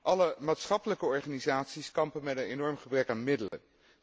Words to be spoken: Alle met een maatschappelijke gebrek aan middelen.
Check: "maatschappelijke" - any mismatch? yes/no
yes